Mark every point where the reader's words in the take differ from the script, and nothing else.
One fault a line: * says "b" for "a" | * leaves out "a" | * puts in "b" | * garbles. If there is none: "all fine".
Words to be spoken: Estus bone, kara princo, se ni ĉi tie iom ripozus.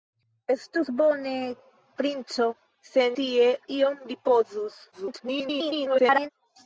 * leaves out "kara"
* leaves out "ni ĉi"
* garbles